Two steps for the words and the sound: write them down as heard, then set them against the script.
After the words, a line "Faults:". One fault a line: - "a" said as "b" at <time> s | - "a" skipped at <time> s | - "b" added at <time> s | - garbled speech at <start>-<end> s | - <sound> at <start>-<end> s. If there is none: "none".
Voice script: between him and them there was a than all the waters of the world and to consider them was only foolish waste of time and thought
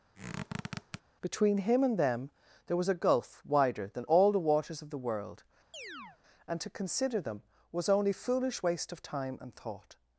between him and them there was a gulf wider than all the waters of the world and to consider them was only foolish waste of time and thought
Faults:
- squeak at 0.1-1.0 s
- "gulf wider" added at 2.9 s
- chirp at 5.7-6.2 s